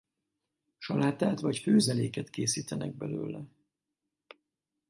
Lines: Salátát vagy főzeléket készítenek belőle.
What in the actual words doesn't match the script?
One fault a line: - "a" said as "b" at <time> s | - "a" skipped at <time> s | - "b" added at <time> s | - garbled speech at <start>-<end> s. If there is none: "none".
none